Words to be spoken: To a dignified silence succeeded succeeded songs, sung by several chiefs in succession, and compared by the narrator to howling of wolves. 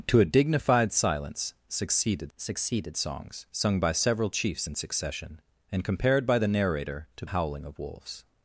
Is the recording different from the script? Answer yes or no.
no